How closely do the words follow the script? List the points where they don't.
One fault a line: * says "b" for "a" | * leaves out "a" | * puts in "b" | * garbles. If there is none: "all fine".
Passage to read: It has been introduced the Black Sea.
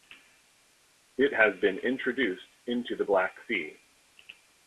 * puts in "into"